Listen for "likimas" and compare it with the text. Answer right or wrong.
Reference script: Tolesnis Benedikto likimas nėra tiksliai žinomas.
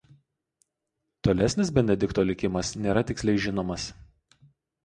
right